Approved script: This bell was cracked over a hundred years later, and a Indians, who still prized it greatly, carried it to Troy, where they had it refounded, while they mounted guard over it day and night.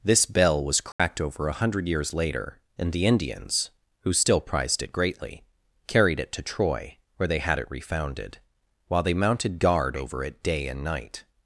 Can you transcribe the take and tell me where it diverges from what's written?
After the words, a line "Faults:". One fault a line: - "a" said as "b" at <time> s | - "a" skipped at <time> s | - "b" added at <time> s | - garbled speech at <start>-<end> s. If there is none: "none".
This bell was cracked over a hundred years later, and the Indians, who still prized it greatly, carried it to Troy, where they had it refounded, while they mounted guard over it day and night.
Faults:
- "a" said as "the" at 2.9 s